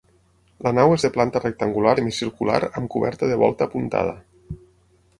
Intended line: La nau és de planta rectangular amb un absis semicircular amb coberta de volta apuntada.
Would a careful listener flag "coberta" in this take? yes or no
no